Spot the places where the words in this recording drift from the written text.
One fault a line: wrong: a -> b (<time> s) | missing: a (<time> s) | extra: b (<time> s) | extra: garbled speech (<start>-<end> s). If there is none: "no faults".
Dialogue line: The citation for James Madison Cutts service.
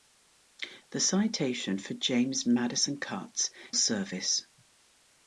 no faults